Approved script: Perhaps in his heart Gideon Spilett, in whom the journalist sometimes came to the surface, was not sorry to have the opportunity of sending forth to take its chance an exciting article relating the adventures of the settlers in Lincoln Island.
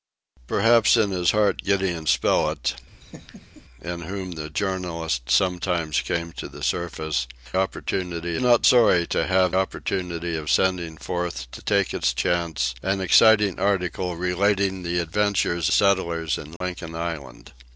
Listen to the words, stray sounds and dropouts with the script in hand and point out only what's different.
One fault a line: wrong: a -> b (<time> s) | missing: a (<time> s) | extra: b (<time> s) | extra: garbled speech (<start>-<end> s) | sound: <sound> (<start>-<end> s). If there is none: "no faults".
sound: laugh (3.0-3.6 s)
wrong: was -> opportunity (7.6 s)
missing: the (9.5 s)
missing: of the (15.7 s)
sound: dropout (16.6-16.6 s)